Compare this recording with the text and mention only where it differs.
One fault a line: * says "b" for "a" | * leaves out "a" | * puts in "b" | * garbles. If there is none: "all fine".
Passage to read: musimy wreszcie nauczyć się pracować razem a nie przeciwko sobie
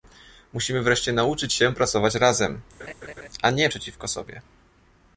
all fine